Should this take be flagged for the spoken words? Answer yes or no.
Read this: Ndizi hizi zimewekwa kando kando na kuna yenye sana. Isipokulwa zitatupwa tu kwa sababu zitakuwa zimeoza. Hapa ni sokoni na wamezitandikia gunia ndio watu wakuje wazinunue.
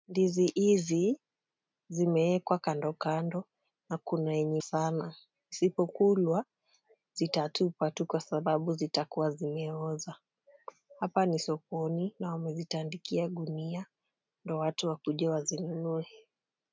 no